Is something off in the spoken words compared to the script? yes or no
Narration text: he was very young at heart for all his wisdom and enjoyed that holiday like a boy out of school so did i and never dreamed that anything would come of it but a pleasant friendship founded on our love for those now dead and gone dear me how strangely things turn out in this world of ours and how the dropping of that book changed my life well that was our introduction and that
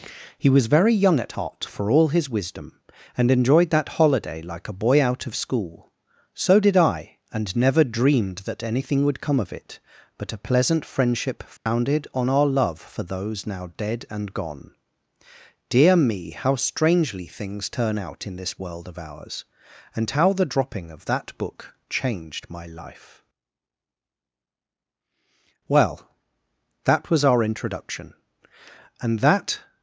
no